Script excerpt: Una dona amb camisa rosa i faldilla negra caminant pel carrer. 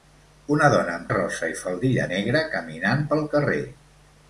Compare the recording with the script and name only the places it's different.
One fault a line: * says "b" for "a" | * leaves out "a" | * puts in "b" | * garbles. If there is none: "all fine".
* leaves out "camisa"